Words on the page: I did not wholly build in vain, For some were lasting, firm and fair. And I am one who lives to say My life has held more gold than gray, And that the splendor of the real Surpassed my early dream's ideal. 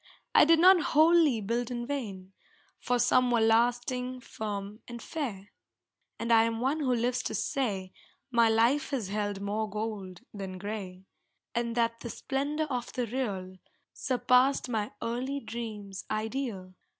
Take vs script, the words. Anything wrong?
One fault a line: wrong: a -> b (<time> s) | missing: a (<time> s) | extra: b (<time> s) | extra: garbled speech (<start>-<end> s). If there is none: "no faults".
no faults